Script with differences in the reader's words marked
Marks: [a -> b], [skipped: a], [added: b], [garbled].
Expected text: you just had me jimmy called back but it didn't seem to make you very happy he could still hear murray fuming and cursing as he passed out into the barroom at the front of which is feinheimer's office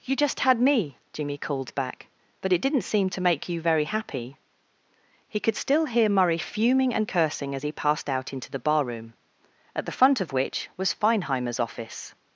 you just had me jimmy called back but it didn't seem to make you very happy he could still hear murray fuming and cursing as he passed out into the barroom at the front of which [is -> was] feinheimer's office